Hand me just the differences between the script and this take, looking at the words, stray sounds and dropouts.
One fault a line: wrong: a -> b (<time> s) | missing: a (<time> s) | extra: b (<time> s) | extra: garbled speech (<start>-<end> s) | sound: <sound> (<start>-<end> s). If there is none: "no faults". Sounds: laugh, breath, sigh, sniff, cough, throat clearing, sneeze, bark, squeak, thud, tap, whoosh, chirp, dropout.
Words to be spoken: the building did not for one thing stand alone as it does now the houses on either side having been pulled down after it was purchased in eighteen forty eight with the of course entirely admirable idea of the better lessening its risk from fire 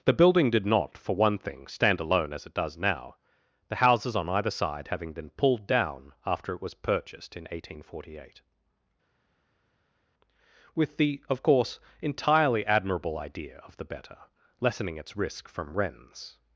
wrong: fire -> wrens (15.7 s)